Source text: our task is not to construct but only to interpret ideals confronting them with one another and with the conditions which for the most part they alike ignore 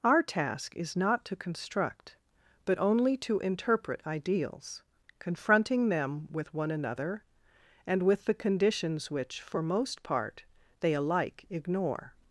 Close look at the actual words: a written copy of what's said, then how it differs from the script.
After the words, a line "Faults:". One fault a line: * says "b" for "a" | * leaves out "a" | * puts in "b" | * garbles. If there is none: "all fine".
our task is not to construct but only to interpret ideals confronting them with one another and with the conditions which for most part they alike ignore
Faults:
* leaves out "the"